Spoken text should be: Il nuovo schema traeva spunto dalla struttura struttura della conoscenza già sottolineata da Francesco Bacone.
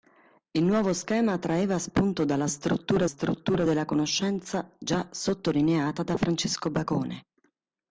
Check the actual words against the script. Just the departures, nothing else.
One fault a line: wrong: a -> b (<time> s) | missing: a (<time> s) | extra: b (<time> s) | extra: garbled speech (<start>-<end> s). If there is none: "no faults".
no faults